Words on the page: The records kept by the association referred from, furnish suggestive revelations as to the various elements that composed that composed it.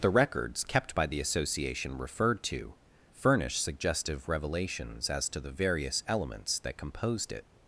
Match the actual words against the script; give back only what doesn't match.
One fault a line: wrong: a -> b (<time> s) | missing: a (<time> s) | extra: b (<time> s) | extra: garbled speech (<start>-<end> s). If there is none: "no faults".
wrong: from -> to (2.4 s)
missing: that composed (7.3 s)